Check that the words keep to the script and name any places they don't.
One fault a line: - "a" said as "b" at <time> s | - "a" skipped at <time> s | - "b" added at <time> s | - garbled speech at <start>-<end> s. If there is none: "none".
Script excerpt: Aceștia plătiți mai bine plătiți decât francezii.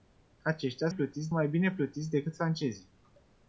none